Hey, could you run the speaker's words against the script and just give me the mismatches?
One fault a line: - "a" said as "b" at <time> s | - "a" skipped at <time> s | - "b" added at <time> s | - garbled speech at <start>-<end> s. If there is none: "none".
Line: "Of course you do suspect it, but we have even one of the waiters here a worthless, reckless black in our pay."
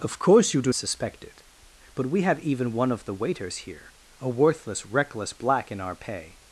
none